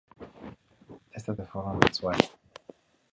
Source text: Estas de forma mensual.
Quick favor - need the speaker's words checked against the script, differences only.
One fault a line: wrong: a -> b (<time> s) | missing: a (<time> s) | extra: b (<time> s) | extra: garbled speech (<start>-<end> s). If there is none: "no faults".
no faults